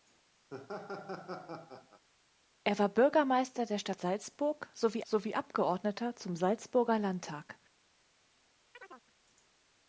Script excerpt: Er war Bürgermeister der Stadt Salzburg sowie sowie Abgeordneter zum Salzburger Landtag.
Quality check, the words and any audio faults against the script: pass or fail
fail